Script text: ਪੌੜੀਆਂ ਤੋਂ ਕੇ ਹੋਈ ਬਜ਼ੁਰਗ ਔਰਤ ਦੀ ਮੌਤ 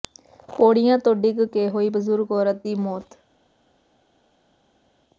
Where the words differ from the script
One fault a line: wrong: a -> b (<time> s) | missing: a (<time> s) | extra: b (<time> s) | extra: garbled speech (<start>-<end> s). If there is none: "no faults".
extra: ਡਿੱਗ (1.1 s)